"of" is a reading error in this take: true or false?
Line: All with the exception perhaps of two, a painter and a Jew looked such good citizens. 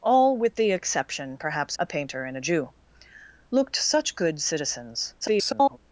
true